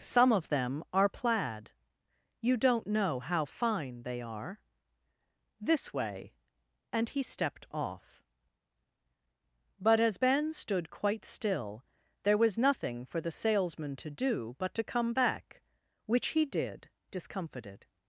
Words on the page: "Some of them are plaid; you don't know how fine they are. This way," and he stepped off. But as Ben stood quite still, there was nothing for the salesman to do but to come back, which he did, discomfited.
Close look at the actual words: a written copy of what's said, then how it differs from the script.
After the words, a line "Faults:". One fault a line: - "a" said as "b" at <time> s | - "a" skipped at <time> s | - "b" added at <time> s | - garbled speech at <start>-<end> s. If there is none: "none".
"Some of them are plaid; you don't know how fine they are. This way," and he stepped off. But as Ben stood quite still, there was nothing for the salesman to do but to come back, which he did, discomfited.
Faults:
none